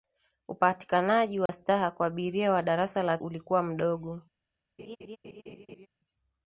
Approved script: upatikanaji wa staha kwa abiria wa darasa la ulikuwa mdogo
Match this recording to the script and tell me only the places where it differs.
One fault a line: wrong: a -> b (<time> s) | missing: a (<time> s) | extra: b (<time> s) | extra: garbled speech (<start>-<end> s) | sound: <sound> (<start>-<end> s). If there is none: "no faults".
sound: dropout (1.5-1.5 s)
sound: laugh (4.8-5.9 s)